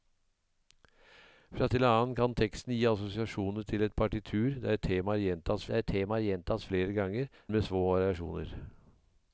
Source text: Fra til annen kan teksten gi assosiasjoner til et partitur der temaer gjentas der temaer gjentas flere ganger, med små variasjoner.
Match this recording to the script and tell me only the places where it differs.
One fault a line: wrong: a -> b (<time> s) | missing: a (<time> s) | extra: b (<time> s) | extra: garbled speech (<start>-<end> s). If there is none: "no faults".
no faults